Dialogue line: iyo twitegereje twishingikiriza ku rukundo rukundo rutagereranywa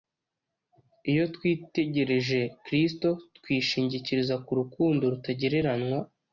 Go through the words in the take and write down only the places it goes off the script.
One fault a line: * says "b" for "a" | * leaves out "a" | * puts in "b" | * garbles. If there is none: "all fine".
* puts in "kristo"
* leaves out "rukundo"